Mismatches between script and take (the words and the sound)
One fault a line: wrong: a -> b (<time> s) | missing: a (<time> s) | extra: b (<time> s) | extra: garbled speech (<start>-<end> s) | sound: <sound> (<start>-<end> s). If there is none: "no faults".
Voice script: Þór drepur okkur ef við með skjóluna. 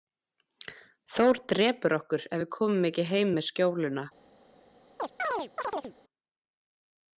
extra: komum ekki heim (2.6 s)
sound: chirp (5.0-5.9 s)